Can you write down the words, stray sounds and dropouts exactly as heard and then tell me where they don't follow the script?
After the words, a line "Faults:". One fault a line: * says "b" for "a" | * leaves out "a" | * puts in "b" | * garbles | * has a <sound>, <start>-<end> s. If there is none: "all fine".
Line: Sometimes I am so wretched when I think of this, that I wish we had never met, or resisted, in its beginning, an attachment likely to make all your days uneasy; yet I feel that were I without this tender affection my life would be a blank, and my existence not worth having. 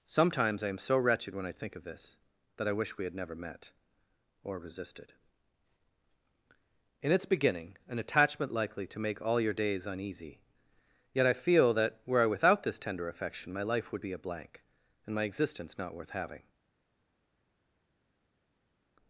Sometimes I am so wretched when I think of this, that I wish we had never met, or resisted, in its beginning, an attachment likely to make all your days uneasy; yet I feel that were I without this tender affection my life would be a blank, and my existence not worth having.
Faults:
all fine